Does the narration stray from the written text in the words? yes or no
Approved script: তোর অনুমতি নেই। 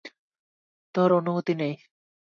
no